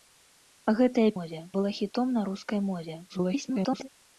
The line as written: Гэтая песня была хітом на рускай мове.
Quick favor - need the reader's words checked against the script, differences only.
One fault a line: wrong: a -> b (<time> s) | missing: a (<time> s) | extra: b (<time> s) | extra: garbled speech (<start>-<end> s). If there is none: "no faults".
wrong: песня -> мове (1.2 s)
extra: garbled speech (3.1-3.9 s)